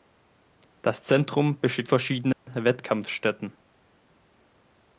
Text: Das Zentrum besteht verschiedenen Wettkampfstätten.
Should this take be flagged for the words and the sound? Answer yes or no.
yes